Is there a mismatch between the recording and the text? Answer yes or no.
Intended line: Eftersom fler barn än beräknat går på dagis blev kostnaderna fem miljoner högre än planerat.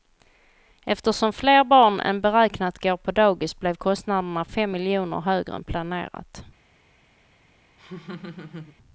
no